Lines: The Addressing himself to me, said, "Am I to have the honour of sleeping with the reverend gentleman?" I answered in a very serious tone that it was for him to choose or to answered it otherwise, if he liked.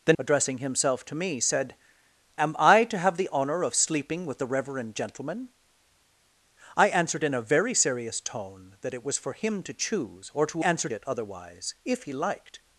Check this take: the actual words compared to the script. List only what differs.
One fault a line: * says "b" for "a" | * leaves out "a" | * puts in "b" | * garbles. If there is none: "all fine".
all fine